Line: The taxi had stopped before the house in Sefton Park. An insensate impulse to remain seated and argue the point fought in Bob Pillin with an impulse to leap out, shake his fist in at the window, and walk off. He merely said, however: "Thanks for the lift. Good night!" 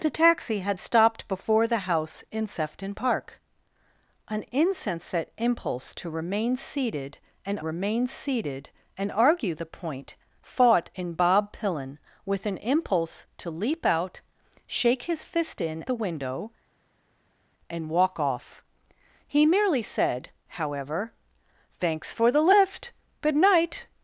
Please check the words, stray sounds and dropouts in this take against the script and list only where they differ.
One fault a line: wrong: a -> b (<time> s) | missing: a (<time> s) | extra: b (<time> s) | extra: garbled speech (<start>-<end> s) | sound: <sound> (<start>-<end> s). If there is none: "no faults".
extra: remain seated and (7.6 s)
missing: at (15.8 s)